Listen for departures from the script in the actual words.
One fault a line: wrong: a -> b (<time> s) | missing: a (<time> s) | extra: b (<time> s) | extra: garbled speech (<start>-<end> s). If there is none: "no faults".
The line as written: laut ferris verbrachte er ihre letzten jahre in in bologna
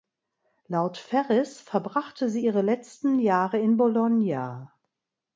wrong: er -> sie (2.3 s)
missing: in (3.8 s)